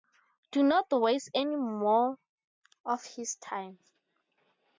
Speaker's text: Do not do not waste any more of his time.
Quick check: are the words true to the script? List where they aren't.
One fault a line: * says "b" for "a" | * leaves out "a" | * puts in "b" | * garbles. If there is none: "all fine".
* leaves out "do not"